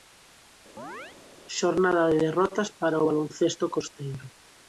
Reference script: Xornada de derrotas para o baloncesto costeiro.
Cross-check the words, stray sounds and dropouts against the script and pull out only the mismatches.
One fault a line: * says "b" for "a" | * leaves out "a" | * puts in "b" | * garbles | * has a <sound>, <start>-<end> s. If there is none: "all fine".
* has a chirp, 0.8-1.2 s